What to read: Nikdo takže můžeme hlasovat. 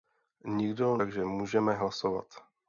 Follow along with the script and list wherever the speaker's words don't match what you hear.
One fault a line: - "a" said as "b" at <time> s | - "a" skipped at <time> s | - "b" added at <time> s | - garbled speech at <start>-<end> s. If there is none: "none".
none